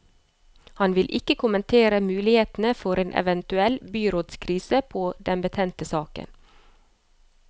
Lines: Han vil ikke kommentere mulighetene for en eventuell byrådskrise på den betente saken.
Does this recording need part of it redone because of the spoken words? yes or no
no